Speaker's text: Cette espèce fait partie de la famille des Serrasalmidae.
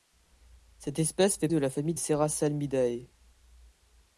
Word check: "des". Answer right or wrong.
wrong